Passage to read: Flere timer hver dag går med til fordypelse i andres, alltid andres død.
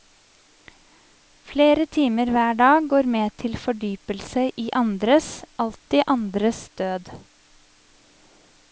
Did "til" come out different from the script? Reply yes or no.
no